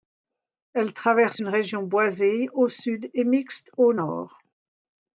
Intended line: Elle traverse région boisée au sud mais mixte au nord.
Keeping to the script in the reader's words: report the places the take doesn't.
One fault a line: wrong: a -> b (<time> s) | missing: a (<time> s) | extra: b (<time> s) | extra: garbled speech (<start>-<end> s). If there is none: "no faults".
extra: une (1.4 s)
wrong: mais -> et (3.1 s)